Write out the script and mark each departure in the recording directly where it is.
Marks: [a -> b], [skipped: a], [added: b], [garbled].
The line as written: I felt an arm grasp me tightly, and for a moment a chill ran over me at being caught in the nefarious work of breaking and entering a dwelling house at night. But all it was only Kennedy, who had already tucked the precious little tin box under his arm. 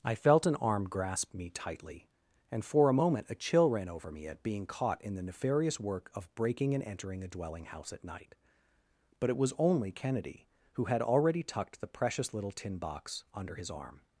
I felt an arm grasp me tightly, and for a moment a chill ran over me at being caught in the nefarious work of breaking and entering a dwelling house at night. But [skipped: all] it was only Kennedy, who had already tucked the precious little tin box under his arm.